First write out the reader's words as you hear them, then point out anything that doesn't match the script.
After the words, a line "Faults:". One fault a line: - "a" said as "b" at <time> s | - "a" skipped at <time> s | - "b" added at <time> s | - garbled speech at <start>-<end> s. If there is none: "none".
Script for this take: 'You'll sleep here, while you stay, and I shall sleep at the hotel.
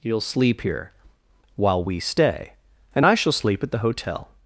'You'll sleep here, while we stay, and I shall sleep at the hotel.
Faults:
- "you" said as "we" at 1.8 s